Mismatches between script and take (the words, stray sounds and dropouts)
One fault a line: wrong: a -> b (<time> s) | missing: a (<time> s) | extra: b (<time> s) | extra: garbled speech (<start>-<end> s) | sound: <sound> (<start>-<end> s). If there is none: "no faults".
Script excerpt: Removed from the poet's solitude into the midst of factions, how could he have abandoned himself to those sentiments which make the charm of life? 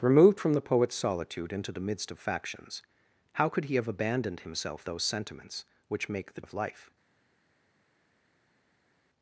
missing: to (4.8 s)
missing: charm (6.5 s)